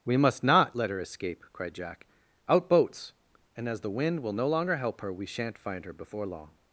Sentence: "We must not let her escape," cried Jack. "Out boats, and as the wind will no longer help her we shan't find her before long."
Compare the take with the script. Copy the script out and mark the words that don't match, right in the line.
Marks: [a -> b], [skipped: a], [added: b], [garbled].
"We must not let her escape," cried Jack. "Out boats, and as the wind will no longer help her we shan't find her before long."